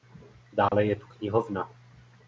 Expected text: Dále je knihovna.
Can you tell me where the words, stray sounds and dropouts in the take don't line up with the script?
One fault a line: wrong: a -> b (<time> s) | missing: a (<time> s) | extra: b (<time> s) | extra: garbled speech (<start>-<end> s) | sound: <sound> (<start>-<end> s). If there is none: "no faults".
sound: dropout (0.7-0.7 s)
extra: tu (0.9 s)